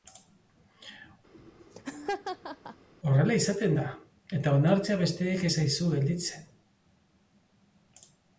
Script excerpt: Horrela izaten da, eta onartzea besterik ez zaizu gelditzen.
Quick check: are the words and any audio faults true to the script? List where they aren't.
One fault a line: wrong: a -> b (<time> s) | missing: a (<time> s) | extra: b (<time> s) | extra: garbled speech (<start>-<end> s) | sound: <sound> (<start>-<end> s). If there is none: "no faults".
sound: laugh (1.3-2.9 s)